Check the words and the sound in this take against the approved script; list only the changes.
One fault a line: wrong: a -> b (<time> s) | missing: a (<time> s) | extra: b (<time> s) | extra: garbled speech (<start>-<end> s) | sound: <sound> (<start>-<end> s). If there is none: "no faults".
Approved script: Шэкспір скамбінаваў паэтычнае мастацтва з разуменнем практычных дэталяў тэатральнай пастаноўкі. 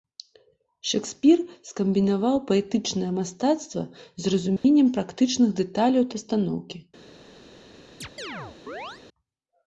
sound: dropout (4.6-4.6 s)
missing: тэатральнай (6.0 s)
sound: chirp (8.0-9.0 s)